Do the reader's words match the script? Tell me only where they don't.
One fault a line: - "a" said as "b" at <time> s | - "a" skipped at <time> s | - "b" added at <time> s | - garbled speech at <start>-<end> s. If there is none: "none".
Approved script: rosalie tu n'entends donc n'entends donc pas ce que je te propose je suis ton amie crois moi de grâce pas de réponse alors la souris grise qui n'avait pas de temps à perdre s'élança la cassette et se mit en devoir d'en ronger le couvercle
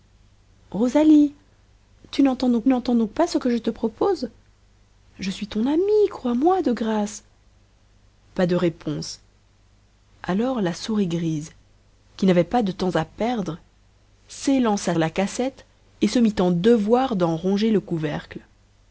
none